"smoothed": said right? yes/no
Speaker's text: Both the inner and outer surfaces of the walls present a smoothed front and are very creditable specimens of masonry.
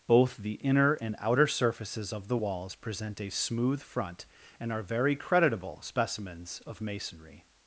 no